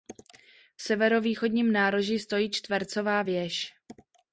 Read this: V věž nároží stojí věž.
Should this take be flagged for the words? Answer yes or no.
yes